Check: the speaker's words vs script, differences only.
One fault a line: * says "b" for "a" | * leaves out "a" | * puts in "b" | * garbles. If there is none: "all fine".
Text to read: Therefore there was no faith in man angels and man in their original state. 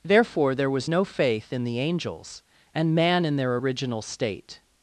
* says "the" for "man"